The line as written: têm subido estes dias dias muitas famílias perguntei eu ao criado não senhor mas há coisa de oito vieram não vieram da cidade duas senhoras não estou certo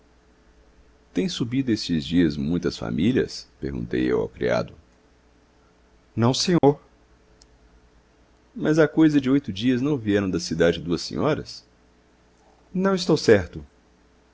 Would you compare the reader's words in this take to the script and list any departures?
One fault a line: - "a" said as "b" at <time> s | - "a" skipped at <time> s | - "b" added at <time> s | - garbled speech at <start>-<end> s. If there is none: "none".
- "dias" skipped at 2.4 s
- "vieram" said as "dias" at 9.5 s